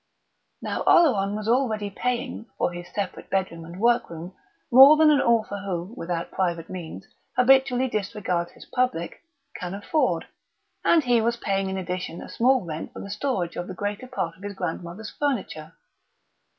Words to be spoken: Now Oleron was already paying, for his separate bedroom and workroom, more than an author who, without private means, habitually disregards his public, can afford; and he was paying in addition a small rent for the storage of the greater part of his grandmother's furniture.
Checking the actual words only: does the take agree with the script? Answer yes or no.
yes